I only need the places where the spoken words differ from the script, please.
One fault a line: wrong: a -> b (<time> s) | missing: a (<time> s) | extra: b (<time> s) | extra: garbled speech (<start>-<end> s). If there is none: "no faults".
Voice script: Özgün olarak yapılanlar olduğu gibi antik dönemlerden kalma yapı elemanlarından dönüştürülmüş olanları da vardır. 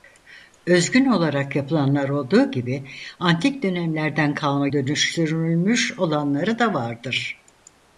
missing: yapı elemanlarından (4.7 s)